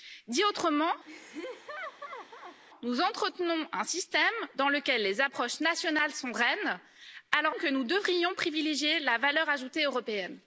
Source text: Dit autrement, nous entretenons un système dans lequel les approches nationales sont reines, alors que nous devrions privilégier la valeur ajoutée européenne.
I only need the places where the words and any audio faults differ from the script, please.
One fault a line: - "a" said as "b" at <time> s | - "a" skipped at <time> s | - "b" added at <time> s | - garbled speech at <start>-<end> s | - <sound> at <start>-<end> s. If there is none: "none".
- laugh at 1.1-2.6 s